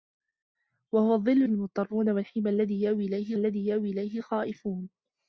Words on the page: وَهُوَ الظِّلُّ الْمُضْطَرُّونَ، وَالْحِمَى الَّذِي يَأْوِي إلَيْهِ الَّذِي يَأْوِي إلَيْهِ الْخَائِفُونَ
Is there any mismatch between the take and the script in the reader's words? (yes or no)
no